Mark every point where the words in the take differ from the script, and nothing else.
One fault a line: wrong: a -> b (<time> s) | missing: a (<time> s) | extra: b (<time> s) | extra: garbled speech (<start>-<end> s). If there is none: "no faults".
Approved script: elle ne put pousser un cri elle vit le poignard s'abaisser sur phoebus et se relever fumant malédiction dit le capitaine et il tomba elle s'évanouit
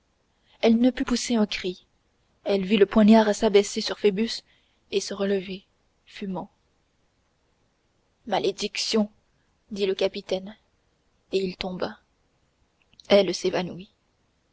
no faults